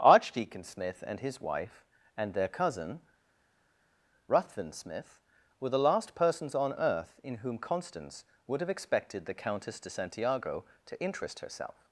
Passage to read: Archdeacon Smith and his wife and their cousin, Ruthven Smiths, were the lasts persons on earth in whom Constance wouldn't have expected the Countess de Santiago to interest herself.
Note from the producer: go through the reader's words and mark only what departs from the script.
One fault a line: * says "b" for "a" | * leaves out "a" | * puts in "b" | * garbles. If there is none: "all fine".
* says "Smith" for "Smiths"
* says "last" for "lasts"
* says "would" for "wouldn't"